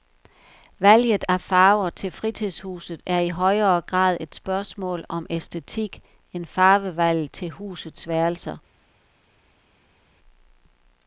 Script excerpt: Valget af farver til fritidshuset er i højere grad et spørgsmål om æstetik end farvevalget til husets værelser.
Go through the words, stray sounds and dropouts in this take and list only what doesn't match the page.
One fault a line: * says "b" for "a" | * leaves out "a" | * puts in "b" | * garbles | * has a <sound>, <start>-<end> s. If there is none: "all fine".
all fine